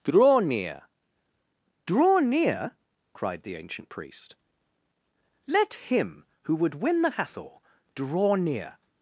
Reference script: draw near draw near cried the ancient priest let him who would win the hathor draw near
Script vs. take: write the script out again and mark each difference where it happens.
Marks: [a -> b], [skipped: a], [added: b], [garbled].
draw near draw near cried the ancient priest let him who would win the hathor draw near